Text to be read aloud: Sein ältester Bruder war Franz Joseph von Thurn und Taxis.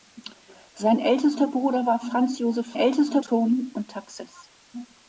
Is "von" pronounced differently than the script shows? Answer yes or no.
yes